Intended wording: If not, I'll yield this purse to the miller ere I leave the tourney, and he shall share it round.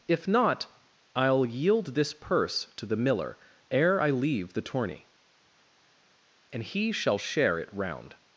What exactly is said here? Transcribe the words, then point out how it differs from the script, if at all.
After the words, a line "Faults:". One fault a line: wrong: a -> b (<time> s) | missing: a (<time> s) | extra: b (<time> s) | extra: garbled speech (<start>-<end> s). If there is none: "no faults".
If not, I'll yield this purse to the miller ere I leave the tourney, and he shall share it round.
Faults:
no faults